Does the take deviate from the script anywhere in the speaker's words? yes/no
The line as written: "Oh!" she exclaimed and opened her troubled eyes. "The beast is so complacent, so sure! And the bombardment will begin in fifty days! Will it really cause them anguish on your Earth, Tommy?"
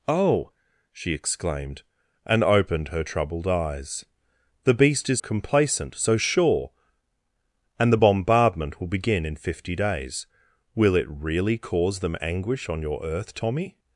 yes